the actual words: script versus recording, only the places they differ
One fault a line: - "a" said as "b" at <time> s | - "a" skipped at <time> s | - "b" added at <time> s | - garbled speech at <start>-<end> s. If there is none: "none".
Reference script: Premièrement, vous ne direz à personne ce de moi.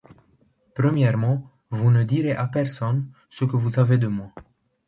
- "que vous savez" added at 3.4 s